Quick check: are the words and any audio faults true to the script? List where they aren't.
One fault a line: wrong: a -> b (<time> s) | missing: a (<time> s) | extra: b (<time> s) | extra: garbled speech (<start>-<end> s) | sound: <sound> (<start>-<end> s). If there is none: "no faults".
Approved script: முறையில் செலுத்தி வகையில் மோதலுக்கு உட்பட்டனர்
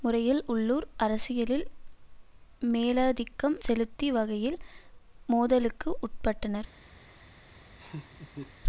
extra: உள்ளூர் அரசியலில் மேலாதிக்கம் (0.5 s)
sound: laugh (7.8-8.5 s)